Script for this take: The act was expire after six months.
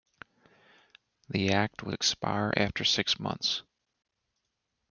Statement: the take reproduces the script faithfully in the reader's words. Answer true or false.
true